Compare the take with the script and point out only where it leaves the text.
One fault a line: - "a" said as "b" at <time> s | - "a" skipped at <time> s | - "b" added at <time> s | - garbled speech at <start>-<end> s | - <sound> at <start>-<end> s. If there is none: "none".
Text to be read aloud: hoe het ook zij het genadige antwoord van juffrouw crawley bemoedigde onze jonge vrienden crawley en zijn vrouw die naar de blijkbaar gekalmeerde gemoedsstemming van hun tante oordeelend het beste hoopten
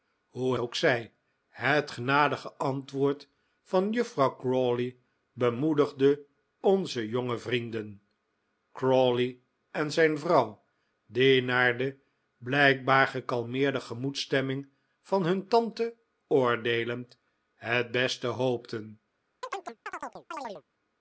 - "het" skipped at 0.6 s
- chirp at 19.4-20.6 s